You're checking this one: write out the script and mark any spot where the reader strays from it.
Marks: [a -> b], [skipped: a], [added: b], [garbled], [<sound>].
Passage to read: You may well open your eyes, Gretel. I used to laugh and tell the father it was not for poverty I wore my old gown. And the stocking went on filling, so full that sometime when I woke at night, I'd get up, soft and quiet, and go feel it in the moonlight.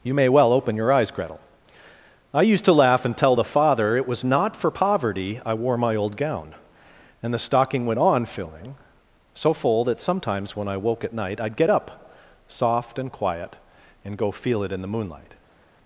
You may well open your eyes, Gretel. I used to laugh and tell the father it was not for poverty I wore my old gown. And the stocking went on filling, so full that [sometime -> sometimes] when I woke at night, I'd get up, soft and quiet, and go feel it in the moonlight.